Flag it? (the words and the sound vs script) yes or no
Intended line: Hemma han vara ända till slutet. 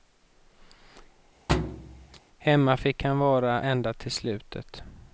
yes